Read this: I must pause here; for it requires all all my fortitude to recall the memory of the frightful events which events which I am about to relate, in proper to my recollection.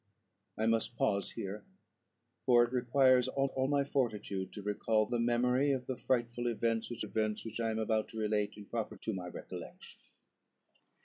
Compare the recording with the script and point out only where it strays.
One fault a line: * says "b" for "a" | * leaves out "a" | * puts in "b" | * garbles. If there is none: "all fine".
all fine